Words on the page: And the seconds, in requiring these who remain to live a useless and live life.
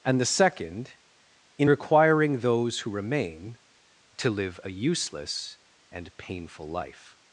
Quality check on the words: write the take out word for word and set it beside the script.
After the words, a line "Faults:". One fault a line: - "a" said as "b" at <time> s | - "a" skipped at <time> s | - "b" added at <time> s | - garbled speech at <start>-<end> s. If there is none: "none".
And the second, in requiring those who remain to live a useless and painful life.
Faults:
- "seconds" said as "second" at 0.2 s
- "these" said as "those" at 2.4 s
- "live" said as "painful" at 6.2 s